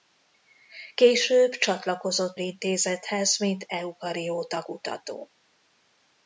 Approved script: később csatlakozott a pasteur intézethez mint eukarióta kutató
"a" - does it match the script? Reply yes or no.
no